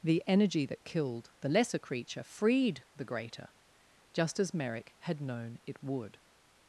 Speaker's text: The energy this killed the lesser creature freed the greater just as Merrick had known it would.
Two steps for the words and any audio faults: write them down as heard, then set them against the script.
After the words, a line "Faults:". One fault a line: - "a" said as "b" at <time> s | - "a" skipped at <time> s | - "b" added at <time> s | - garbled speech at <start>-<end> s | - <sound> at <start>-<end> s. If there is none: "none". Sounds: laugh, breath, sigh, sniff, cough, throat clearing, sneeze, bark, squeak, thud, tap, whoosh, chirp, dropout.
The energy that killed the lesser creature freed the greater just as Merrick had known it would.
Faults:
- "this" said as "that" at 0.7 s